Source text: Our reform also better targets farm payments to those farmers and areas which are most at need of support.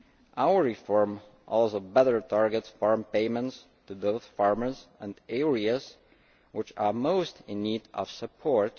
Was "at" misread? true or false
true